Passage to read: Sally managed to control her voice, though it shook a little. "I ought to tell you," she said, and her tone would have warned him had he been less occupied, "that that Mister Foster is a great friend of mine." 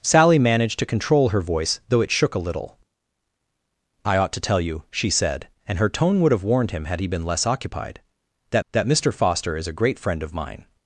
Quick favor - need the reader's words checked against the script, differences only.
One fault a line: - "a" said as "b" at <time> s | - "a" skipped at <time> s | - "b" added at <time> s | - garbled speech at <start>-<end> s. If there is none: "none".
none